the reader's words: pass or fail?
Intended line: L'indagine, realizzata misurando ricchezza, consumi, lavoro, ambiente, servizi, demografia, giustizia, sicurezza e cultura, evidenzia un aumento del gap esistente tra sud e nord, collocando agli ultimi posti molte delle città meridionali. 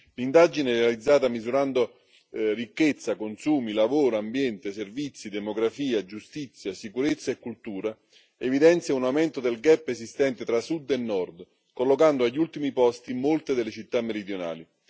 pass